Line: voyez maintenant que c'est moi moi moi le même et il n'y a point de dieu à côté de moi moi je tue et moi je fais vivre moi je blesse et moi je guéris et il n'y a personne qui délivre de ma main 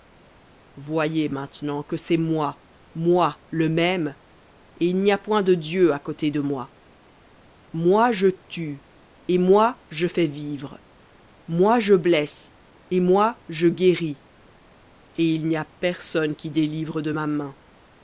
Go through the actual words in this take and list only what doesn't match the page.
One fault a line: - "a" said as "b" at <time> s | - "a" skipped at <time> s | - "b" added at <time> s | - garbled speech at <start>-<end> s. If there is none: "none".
- "moi" skipped at 3.4 s